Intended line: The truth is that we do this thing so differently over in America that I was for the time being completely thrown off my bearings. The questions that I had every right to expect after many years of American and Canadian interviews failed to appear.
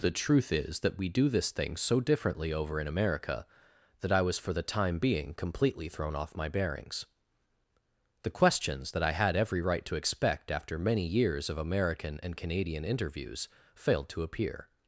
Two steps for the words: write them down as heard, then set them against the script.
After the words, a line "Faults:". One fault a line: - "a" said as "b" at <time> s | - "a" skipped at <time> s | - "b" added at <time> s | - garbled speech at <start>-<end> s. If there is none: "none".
The truth is that we do this thing so differently over in America that I was for the time being completely thrown off my bearings. The questions that I had every right to expect after many years of American and Canadian interviews failed to appear.
Faults:
none